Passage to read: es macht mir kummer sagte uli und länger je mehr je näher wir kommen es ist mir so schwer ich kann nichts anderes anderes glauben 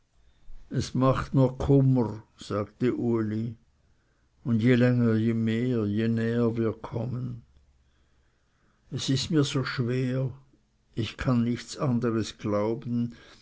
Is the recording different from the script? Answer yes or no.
yes